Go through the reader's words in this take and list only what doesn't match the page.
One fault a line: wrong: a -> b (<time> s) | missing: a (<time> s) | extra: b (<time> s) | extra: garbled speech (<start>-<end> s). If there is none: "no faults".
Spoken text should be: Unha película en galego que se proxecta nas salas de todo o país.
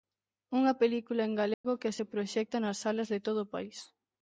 no faults